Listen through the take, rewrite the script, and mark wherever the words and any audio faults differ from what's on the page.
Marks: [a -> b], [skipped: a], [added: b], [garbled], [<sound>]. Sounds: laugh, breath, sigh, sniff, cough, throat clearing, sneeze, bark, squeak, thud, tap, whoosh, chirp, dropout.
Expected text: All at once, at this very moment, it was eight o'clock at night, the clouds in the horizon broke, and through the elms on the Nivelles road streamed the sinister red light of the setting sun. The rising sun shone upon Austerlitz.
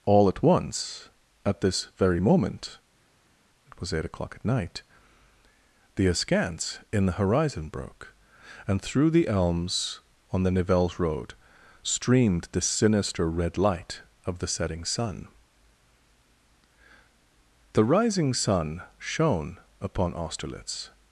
All at once, at this very moment, it was eight o'clock at night, the [clouds -> askance] in the horizon broke, and through the elms on the Nivelles road streamed the sinister red light of the setting sun. The rising sun shone upon Austerlitz.